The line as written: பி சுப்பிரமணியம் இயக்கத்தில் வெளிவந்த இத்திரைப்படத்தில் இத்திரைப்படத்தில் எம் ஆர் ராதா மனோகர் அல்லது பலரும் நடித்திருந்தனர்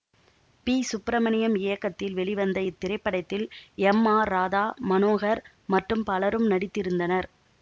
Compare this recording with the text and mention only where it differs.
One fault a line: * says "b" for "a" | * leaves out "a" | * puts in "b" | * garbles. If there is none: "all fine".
* leaves out "இத்திரைப்படத்தில்"
* says "மற்றும்" for "அல்லது"